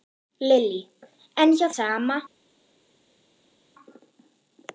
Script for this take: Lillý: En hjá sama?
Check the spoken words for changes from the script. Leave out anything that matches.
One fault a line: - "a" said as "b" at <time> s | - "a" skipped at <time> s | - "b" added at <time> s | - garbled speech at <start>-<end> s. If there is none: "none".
none